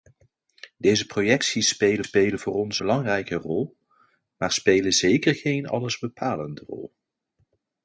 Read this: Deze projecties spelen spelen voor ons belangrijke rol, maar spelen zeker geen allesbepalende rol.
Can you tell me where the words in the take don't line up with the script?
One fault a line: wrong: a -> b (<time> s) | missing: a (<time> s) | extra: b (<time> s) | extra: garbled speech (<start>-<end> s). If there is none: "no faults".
no faults